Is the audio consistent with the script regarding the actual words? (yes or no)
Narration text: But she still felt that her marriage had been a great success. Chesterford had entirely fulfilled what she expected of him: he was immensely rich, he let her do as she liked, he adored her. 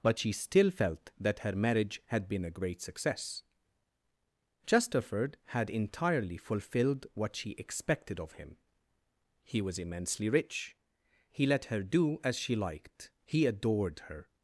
yes